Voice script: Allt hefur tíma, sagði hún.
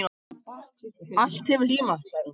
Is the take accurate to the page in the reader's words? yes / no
yes